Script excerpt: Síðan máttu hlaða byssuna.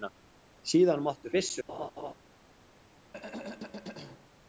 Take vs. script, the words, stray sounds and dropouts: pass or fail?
fail